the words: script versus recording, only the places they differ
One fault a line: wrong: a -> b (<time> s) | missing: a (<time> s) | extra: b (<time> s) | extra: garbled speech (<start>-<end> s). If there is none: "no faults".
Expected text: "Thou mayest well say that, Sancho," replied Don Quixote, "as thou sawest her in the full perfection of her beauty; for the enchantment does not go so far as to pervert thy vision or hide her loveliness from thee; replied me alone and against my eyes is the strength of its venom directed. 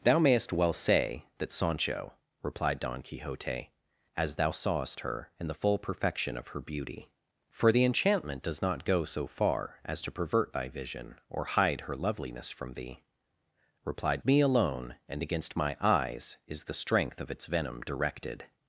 no faults